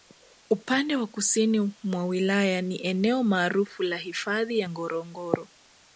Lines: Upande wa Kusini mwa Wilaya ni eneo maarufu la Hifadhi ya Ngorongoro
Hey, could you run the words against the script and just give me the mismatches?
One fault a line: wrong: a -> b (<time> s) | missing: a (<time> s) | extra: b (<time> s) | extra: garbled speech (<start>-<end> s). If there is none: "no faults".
no faults